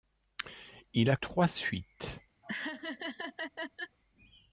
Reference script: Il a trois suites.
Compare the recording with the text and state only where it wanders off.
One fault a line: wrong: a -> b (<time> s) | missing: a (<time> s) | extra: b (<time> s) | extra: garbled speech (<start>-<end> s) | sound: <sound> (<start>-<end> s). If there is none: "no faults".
sound: laugh (2.4-4.0 s)